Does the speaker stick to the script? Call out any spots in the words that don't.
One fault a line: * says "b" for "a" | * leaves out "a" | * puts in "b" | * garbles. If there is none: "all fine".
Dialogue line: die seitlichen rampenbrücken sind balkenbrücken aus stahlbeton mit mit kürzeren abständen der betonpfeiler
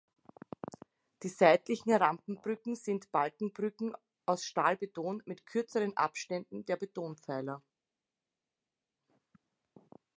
* leaves out "mit"